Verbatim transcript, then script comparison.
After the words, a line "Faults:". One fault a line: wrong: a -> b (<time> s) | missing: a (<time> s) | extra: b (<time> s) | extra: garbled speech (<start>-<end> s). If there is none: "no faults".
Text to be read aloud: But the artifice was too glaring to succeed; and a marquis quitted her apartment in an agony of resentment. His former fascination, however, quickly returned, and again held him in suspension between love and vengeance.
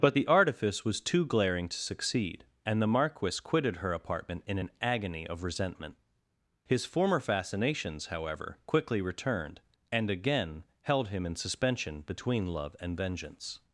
But the artifice was too glaring to succeed; and the marquis quitted her apartment in an agony of resentment. His former fascinations, however, quickly returned, and again held him in suspension between love and vengeance.
Faults:
wrong: a -> the (2.8 s)
wrong: fascination -> fascinations (7.2 s)